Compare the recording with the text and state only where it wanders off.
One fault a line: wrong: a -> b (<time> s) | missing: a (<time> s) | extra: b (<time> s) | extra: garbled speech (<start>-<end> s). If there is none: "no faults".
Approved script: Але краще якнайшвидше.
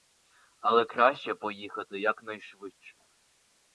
extra: поїхати (1.3 s)